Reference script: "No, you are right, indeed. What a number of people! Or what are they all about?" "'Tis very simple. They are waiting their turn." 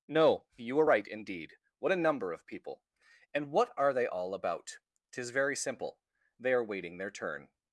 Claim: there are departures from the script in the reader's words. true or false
true